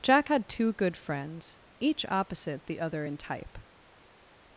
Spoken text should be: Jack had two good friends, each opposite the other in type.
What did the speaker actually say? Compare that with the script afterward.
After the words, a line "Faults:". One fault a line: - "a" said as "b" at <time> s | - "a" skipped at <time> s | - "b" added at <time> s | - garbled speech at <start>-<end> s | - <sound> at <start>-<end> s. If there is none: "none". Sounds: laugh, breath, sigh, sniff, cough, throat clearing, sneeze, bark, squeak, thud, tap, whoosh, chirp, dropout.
Jack had two good friends, each opposite the other in type.
Faults:
none